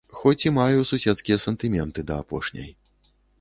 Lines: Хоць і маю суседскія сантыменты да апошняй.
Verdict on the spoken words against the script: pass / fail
pass